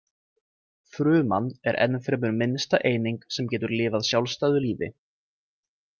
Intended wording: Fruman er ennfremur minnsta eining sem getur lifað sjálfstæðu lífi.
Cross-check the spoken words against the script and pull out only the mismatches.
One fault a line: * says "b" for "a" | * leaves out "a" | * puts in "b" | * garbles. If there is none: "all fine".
all fine